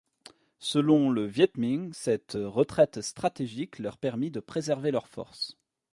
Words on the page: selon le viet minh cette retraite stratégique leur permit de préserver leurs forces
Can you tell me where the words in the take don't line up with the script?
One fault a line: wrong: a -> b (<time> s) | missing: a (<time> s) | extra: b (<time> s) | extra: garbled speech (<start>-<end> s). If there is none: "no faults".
no faults